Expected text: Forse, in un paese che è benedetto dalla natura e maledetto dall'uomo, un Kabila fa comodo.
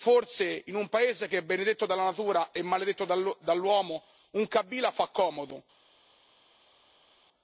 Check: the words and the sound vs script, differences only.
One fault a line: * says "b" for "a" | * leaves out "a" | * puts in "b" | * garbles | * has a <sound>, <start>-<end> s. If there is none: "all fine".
all fine